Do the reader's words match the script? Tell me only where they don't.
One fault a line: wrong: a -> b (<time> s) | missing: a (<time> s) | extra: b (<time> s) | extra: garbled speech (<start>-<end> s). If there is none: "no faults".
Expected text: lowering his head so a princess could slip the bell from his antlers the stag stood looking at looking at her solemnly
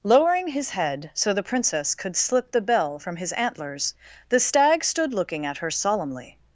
wrong: a -> the (1.3 s)
missing: looking at (5.6 s)